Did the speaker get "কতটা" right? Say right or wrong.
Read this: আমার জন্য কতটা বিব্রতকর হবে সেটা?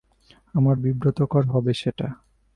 wrong